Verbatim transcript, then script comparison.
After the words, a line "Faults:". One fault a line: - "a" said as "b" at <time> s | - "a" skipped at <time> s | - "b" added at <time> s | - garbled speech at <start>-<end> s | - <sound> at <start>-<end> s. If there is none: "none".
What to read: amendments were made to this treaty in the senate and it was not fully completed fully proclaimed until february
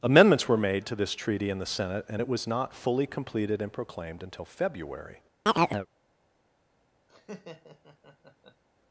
amendments were made to this treaty in the senate and it was not fully completed and proclaimed until february
Faults:
- "fully" said as "and" at 3.6 s
- chirp at 5.5-5.9 s
- laugh at 7.1-8.6 s